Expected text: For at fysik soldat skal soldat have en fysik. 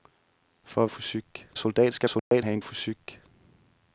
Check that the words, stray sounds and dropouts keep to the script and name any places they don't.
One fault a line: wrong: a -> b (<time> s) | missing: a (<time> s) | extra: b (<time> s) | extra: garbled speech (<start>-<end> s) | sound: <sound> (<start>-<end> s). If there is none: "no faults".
sound: dropout (2.2-2.3 s)